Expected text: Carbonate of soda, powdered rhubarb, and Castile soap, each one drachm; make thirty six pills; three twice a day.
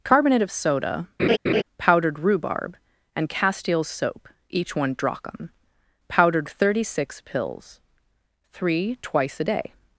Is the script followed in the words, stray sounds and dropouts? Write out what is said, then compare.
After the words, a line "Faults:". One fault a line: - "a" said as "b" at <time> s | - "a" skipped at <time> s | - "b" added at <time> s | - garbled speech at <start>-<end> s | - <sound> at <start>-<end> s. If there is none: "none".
Carbonate of soda, powdered rhubarb, and Castile soap, each one drachm; powdered thirty six pills; three twice a day.
Faults:
- laugh at 1.2-1.6 s
- "make" said as "powdered" at 6.1 s